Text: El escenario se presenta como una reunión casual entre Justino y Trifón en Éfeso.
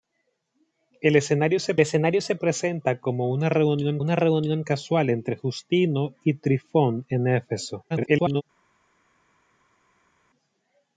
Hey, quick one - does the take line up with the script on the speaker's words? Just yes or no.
no